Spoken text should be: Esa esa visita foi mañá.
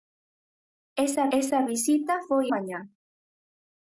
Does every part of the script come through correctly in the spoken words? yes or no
yes